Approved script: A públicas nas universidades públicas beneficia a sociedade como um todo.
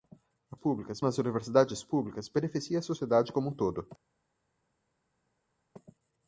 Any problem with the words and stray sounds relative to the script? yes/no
no